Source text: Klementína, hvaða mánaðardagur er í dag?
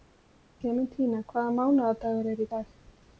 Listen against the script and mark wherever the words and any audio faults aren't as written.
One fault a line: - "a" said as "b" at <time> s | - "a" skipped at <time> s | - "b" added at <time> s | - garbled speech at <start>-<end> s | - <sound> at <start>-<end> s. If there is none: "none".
none